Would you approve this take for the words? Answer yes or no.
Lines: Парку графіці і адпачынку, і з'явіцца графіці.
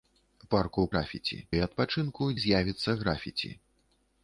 yes